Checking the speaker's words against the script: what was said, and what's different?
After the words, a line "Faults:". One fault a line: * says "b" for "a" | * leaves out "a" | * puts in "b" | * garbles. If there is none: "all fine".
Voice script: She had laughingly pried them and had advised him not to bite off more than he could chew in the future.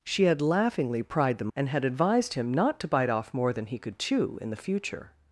She had laughingly pried them and had advised him not to bite off more than he could chew in the future.
Faults:
all fine